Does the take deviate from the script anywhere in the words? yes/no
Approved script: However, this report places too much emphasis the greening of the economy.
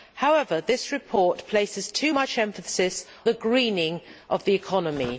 no